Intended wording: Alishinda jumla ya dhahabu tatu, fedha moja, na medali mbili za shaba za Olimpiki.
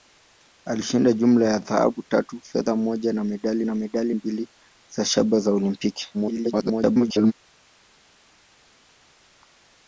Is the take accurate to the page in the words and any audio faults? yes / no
no